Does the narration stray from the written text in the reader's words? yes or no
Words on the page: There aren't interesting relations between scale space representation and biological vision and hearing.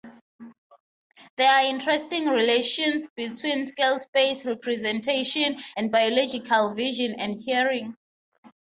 yes